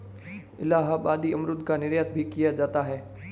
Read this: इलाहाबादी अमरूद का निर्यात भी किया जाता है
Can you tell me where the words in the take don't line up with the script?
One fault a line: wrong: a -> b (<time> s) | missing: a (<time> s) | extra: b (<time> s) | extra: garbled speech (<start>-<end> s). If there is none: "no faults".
no faults